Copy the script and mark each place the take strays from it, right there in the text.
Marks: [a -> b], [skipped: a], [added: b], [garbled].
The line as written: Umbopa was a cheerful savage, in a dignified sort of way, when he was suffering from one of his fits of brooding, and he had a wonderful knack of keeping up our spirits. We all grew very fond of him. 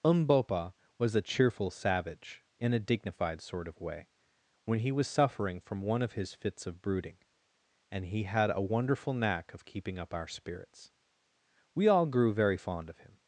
Umbopa was a cheerful savage, in a dignified sort of way, when he was suffering from one of his fits of brooding, and he had a wonderful knack of keeping up our spirits. We all grew very fond of him.